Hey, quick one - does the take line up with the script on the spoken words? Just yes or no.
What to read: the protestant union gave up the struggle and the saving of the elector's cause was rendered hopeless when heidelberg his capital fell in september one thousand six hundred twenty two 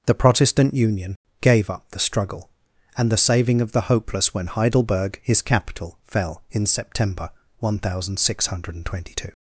no